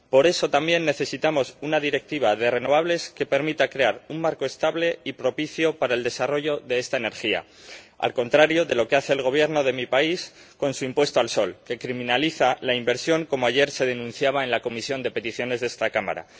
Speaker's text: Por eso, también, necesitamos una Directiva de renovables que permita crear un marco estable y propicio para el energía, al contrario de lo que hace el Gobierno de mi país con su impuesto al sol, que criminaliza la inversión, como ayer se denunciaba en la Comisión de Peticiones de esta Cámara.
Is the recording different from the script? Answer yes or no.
yes